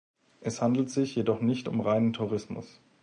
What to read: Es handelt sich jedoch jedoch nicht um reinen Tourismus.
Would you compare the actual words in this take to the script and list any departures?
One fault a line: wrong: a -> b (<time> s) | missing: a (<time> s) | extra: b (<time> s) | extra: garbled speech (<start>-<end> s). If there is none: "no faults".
missing: jedoch (1.4 s)